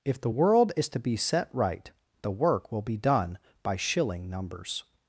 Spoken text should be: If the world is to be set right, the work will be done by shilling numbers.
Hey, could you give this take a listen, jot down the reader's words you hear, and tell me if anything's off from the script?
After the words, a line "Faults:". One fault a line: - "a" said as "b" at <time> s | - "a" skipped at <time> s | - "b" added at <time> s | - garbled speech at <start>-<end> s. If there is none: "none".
If the world is to be set right, the work will be done by shilling numbers.
Faults:
none